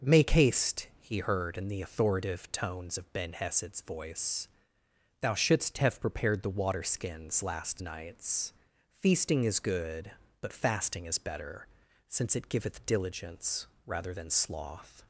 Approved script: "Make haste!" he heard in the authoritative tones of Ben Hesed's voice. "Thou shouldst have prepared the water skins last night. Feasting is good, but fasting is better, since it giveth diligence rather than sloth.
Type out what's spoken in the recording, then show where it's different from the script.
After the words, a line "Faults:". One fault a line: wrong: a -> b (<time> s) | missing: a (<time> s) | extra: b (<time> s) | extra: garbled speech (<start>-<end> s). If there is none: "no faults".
"Make haste!" he heard in the authoritative tones of Ben Hesed's voice. "Thou shouldst have prepared the water skins last nights. Feasting is good, but fasting is better, since it giveth diligence rather than sloth.
Faults:
wrong: night -> nights (7.8 s)